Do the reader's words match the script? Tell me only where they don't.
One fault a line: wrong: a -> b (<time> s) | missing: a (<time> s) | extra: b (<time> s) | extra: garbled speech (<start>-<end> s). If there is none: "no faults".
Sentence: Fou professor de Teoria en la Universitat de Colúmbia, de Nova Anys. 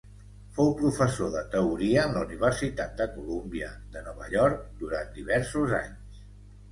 extra: York durant diversos (4.4 s)